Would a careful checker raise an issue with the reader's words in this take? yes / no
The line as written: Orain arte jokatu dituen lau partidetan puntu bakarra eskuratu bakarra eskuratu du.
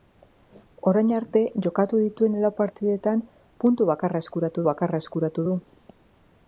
no